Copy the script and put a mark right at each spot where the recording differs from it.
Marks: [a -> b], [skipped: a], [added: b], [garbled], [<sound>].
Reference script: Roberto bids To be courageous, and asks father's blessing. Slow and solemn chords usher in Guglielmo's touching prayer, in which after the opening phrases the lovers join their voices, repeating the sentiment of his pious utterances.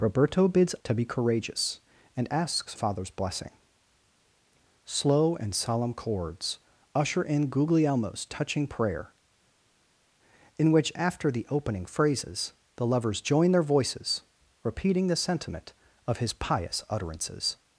Roberto bids To be courageous, and asks father's blessing. Slow and solemn chords usher in Guglielmo's touching prayer, in which after the opening phrases the lovers join their voices, repeating the sentiment of his pious utterances.